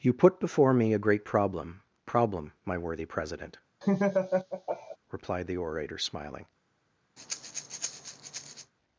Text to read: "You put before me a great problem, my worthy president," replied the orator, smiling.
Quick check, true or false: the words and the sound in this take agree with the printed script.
false